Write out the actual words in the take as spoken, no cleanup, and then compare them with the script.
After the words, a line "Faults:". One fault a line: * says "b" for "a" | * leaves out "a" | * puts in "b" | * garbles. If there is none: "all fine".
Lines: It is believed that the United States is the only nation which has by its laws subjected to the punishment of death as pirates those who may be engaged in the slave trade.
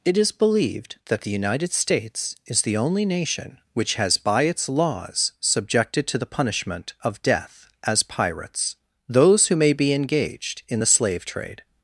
It is believed that the United States is the only nation which has by its laws subjected to the punishment of death as pirates those who may be engaged in the slave trade.
Faults:
all fine